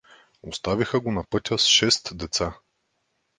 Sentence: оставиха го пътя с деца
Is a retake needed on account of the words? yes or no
yes